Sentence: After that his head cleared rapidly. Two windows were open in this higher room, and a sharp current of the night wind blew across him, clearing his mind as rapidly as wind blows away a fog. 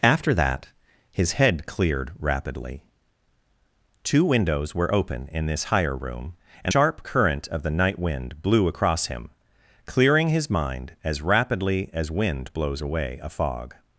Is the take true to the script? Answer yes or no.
no